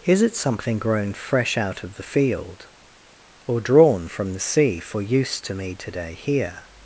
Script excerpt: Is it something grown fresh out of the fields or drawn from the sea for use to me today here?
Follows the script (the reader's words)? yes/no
no